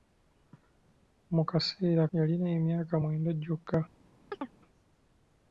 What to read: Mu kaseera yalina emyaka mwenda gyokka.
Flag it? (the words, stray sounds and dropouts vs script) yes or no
yes